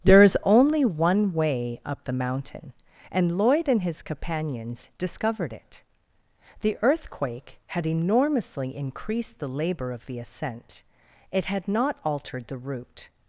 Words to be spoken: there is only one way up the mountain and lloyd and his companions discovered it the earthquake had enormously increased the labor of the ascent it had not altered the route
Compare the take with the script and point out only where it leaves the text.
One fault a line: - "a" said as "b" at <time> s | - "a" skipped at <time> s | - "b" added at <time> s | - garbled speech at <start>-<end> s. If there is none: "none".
none